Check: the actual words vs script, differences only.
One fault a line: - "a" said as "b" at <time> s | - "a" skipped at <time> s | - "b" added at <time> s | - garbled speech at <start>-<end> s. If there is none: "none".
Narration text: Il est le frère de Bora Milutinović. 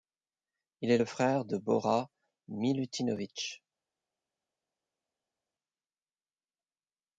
none